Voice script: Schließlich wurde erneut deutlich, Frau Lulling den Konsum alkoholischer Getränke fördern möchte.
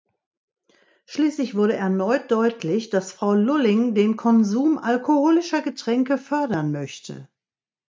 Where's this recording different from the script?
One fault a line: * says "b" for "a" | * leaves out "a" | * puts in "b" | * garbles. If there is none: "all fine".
* puts in "dass"